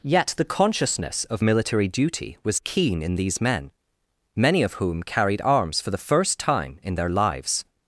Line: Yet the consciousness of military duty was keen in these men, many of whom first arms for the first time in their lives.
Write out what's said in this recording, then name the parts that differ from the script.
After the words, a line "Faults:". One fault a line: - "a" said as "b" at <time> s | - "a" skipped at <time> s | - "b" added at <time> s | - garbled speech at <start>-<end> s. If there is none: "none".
Yet the consciousness of military duty was keen in these men, many of whom carried arms for the first time in their lives.
Faults:
- "first" said as "carried" at 5.0 s